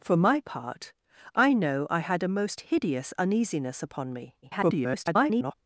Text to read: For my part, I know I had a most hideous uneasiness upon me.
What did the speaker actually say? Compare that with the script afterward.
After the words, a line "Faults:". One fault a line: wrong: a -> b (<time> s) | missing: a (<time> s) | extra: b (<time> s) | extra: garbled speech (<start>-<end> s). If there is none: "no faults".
For my part, I know I had a most hideous uneasiness upon me. [garbled]
Faults:
extra: garbled speech (4.4-5.5 s)